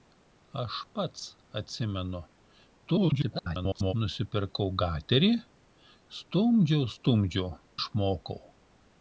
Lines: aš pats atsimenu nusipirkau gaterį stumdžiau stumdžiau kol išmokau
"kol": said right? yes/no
no